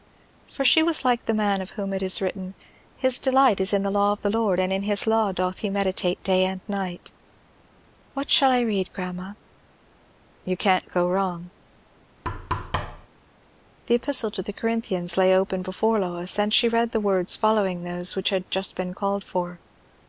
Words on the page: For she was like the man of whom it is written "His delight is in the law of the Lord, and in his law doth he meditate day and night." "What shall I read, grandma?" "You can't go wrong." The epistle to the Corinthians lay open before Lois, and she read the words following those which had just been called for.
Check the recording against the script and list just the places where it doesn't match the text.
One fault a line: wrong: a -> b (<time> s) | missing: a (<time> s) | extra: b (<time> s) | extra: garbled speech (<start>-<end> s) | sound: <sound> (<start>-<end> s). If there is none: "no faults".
sound: thud (12.2-13.1 s)